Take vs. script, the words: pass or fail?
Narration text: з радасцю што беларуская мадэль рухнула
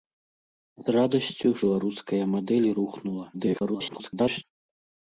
fail